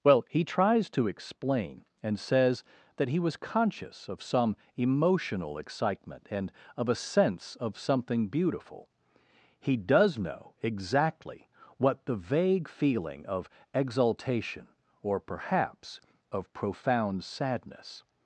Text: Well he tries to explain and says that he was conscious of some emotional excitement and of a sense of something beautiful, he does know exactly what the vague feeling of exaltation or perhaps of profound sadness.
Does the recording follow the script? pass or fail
pass